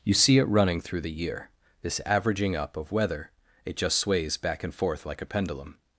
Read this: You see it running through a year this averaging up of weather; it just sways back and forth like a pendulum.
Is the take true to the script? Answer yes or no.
no